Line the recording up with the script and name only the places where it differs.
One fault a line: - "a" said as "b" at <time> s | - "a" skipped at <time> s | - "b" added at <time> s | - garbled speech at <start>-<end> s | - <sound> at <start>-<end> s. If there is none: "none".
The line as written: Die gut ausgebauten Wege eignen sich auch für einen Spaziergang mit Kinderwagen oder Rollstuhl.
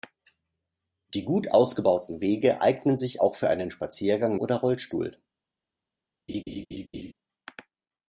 - "mit Kinderwagen" skipped at 4.4 s
- laugh at 6.3-7.1 s